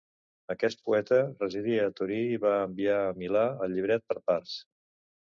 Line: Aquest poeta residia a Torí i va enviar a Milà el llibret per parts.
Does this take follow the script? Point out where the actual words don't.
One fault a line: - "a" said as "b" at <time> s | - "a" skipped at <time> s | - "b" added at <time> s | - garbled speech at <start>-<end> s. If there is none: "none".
none